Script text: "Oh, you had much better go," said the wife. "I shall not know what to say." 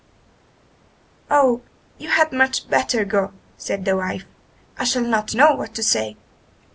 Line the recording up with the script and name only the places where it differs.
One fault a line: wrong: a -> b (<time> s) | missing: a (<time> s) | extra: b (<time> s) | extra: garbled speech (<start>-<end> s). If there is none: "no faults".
no faults